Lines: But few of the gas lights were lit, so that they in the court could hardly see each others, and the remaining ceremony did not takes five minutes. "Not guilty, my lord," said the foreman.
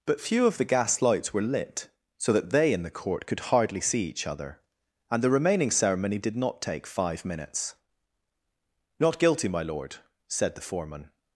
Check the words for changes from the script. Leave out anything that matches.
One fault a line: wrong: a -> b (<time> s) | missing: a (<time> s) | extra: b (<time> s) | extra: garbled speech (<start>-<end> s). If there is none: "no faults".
wrong: others -> other (4.2 s)
wrong: takes -> take (6.6 s)